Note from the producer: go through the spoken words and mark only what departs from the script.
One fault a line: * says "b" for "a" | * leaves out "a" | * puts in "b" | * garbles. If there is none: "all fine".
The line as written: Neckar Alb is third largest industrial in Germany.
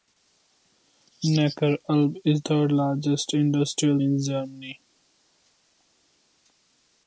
all fine